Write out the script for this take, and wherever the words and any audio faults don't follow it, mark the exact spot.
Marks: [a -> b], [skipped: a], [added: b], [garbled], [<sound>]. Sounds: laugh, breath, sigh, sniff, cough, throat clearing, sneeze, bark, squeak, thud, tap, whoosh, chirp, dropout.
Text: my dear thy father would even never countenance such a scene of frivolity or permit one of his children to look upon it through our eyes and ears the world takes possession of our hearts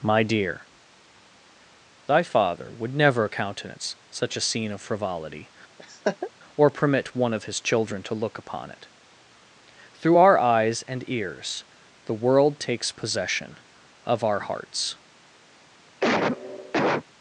my dear thy father would [skipped: even] never countenance such a scene of frivolity [laugh] or permit one of his children to look upon it through our eyes and ears the world takes possession of our hearts [cough]